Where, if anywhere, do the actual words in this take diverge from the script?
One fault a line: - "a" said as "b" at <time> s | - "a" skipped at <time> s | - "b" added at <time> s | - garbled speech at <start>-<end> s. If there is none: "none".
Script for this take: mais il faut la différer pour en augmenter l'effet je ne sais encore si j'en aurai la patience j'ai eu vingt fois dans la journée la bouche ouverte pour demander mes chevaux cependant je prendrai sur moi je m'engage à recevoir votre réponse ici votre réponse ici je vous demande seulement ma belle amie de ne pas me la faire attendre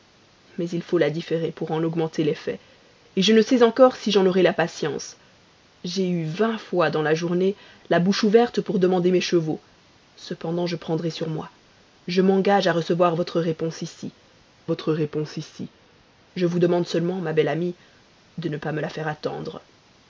none